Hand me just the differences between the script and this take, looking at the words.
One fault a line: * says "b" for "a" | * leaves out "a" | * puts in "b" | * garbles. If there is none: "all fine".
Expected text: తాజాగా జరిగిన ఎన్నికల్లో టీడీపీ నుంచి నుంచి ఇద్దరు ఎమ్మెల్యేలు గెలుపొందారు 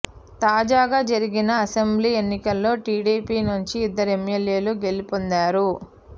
* puts in "అసెంబ్లీ"
* leaves out "నుంచి"